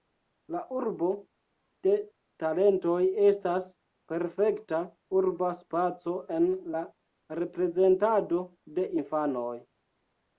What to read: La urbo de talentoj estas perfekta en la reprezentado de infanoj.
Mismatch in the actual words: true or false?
true